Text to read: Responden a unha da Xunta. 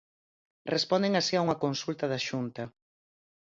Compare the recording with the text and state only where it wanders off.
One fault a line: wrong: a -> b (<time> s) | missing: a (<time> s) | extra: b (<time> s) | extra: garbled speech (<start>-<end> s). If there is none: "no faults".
extra: así (1.1 s)
extra: consulta (1.6 s)